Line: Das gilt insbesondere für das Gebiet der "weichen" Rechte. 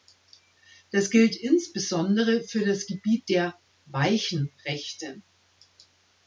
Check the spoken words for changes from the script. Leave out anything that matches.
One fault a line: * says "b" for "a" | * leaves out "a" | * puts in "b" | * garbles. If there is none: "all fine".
all fine